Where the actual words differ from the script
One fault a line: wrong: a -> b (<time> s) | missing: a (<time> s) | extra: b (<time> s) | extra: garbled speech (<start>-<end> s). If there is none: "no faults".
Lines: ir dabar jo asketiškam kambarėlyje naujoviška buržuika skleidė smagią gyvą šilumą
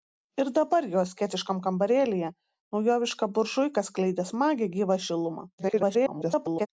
extra: garbled speech (5.6-6.7 s)